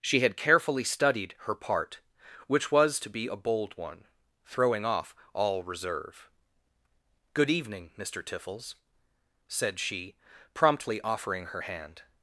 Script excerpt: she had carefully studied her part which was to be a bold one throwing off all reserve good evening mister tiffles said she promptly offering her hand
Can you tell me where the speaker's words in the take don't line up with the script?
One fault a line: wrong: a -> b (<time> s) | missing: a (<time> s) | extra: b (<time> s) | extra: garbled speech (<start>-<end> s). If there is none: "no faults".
no faults